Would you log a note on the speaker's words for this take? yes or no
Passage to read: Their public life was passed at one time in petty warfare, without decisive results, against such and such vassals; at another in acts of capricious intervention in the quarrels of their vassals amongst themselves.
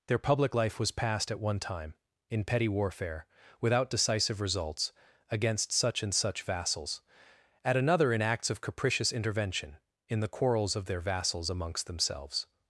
no